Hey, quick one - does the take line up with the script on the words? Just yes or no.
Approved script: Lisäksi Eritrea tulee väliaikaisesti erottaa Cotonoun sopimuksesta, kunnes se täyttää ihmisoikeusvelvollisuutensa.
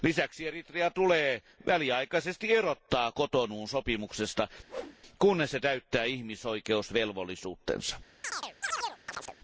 yes